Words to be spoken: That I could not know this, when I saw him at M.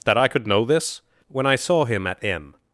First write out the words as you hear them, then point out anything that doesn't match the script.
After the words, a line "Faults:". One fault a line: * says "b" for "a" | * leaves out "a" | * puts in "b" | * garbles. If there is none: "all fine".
That I could know this, when I saw him at M.
Faults:
* leaves out "not"